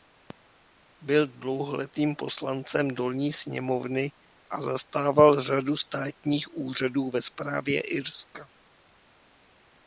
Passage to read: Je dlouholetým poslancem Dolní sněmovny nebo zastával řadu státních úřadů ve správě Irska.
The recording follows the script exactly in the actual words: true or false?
false